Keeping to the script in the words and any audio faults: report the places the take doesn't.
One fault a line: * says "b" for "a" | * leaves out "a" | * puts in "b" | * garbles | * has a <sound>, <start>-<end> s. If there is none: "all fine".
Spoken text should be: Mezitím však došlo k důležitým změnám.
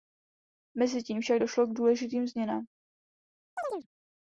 * has a chirp, 3.6-3.9 s